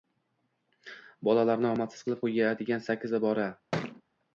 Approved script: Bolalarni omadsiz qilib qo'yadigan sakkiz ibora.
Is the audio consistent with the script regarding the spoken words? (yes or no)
yes